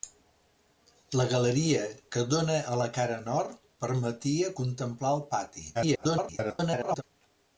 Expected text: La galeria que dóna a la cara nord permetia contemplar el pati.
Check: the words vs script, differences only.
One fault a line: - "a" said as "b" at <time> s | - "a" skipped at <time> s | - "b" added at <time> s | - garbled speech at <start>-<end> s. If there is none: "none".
- garbled speech at 5.7-7.0 s